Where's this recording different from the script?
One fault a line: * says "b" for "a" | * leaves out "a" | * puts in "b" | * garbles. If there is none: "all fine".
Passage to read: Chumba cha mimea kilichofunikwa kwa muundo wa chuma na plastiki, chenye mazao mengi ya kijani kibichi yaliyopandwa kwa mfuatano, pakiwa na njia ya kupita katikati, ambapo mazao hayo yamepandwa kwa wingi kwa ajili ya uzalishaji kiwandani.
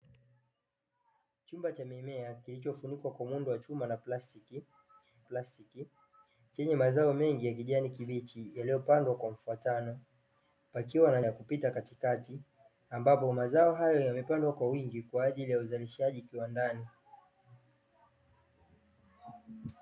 * puts in "plastiki"
* leaves out "njia"